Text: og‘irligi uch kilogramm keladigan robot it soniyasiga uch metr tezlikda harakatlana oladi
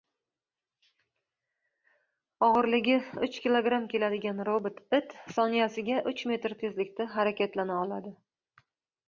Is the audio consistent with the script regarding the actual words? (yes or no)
yes